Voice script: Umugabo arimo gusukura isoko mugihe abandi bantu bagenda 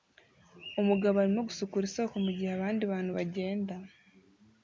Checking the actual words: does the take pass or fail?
pass